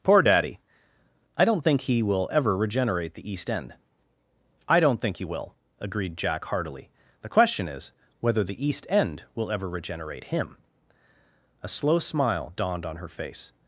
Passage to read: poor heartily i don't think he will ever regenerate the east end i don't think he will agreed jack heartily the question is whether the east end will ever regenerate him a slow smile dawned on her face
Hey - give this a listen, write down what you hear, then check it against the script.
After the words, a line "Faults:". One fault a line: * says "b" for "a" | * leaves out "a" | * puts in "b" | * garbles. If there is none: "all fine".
poor daddy i don't think he will ever regenerate the east end i don't think he will agreed jack heartily the question is whether the east end will ever regenerate him a slow smile dawned on her face
Faults:
* says "daddy" for "heartily"